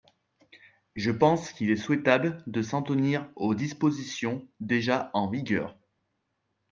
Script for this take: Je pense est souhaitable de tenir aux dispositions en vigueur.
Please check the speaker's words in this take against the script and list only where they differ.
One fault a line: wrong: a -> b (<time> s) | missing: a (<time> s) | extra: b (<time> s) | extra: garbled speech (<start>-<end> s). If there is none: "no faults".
extra: qu'il (1.5 s)
extra: s'en (2.6 s)
extra: déjà (4.6 s)